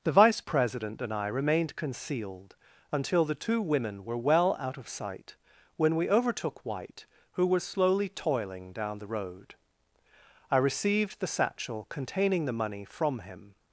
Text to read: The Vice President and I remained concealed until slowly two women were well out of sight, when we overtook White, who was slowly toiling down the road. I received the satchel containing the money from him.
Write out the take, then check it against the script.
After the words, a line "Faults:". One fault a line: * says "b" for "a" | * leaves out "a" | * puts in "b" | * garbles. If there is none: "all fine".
The Vice President and I remained concealed until the two women were well out of sight, when we overtook White, who was slowly toiling down the road. I received the satchel containing the money from him.
Faults:
* says "the" for "slowly"